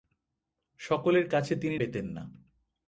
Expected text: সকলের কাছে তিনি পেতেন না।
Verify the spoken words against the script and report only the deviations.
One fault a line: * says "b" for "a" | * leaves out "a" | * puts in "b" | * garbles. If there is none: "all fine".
all fine